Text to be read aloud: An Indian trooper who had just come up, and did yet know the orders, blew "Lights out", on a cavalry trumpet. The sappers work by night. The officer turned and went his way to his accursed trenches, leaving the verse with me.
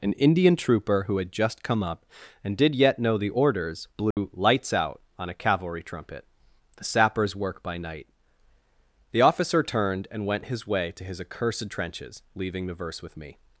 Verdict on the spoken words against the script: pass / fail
pass